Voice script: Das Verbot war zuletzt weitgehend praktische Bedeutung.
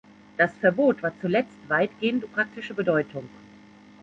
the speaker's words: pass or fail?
pass